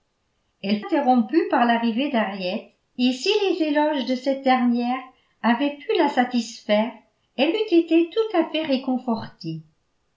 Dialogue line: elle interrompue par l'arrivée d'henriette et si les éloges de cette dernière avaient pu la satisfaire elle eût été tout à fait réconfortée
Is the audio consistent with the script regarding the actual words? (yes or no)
yes